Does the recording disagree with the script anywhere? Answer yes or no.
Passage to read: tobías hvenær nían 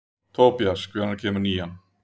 yes